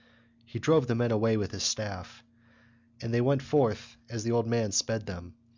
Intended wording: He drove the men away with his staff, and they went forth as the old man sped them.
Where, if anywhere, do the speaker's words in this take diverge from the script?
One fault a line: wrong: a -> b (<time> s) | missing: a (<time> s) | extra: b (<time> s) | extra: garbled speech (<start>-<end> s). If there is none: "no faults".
no faults